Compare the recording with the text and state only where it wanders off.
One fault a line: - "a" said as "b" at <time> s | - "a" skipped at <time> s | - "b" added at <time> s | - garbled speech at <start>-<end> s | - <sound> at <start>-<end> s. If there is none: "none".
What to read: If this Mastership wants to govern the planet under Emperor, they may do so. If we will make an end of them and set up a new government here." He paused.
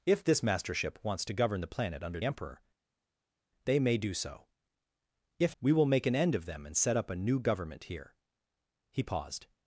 none